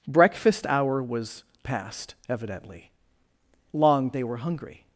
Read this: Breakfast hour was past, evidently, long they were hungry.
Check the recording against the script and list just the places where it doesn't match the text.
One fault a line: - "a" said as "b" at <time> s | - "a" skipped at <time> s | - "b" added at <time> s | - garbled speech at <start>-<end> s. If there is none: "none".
none